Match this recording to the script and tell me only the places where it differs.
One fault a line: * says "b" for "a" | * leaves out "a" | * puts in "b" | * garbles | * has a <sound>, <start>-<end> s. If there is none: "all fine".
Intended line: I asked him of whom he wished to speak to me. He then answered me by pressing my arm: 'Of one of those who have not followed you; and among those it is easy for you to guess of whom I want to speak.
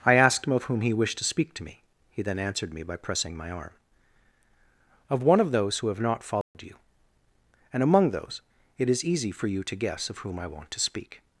* has a dropout, 6.4-6.5 s